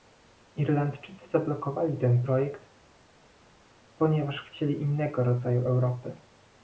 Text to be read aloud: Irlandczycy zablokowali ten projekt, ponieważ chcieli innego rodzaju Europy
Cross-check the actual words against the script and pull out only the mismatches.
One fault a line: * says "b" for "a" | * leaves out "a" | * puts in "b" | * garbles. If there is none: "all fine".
all fine